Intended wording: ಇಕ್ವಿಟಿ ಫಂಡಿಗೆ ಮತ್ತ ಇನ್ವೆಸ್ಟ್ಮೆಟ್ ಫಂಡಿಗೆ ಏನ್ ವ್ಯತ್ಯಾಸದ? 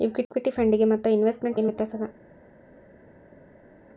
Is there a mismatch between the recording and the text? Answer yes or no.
yes